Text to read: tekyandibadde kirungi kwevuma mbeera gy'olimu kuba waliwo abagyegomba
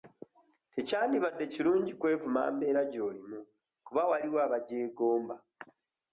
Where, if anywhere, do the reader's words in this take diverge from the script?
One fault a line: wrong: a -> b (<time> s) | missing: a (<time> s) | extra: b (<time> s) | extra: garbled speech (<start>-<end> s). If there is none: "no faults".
no faults